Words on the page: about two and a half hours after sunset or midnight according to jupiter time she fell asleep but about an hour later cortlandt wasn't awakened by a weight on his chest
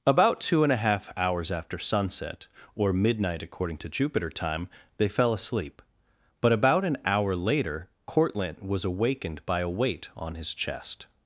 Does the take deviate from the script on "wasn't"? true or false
true